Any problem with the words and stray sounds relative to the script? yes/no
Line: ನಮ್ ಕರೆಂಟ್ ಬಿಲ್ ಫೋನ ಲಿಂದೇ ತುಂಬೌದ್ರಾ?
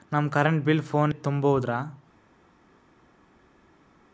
yes